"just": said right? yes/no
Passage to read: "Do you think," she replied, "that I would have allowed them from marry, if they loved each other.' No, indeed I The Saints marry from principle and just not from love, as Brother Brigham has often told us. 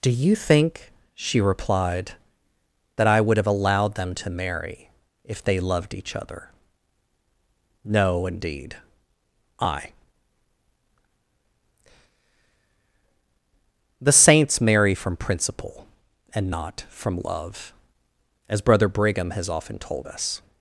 no